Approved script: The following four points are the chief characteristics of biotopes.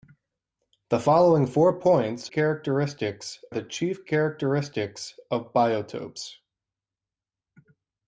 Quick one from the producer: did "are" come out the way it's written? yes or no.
no